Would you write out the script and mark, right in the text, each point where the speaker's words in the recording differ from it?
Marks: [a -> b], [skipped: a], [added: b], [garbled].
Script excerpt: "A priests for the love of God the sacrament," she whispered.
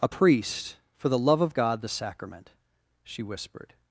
"A [priests -> priest] for the love of God the sacrament," she whispered.